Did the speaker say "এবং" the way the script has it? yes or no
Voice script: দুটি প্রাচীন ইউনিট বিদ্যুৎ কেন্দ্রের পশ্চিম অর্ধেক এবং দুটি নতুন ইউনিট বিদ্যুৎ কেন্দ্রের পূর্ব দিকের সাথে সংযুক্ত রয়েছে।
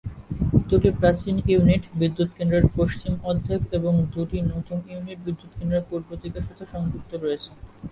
yes